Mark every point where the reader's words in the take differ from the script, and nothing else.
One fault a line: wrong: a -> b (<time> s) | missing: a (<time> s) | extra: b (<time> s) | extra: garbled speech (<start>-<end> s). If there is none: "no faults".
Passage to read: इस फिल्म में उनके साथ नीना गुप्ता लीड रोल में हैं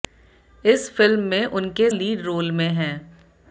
missing: साथ नीना गुप्ता (1.9 s)